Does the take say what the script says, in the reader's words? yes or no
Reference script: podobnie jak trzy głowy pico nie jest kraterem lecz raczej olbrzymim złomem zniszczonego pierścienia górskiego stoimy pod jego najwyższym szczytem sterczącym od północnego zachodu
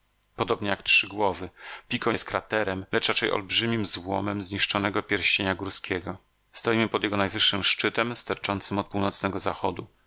no